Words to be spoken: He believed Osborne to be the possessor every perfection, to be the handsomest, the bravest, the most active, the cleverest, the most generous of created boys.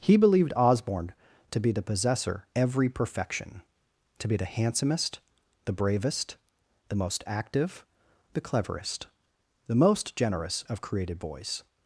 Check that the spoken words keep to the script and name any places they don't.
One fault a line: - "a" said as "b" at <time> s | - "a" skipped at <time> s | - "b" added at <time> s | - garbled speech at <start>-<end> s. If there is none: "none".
none